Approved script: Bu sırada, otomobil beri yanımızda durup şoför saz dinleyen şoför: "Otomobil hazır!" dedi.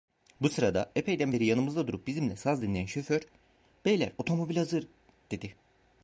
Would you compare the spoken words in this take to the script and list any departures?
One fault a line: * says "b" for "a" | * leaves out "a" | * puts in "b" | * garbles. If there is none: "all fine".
* says "epeyden" for "otomobil"
* says "bizimle" for "şoför"
* puts in "Beyler"